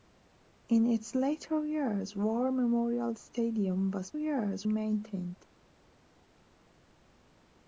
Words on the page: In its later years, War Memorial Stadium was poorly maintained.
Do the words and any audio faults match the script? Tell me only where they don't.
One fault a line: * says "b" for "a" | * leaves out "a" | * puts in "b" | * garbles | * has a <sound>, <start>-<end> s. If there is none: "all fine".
* says "years" for "poorly"